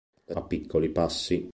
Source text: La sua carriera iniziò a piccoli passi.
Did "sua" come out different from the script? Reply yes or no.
yes